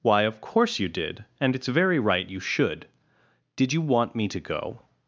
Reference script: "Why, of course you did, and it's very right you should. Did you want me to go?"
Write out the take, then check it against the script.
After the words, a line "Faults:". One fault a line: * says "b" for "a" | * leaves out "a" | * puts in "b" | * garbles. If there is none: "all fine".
"Why, of course you did, and it's very right you should. Did you want me to go?"
Faults:
all fine